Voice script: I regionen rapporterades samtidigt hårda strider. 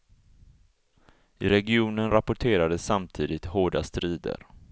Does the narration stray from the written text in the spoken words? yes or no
no